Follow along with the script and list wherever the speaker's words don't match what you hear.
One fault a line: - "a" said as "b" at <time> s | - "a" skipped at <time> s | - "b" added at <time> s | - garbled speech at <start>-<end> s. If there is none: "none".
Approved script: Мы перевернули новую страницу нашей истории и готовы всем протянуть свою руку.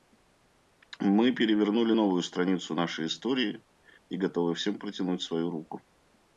none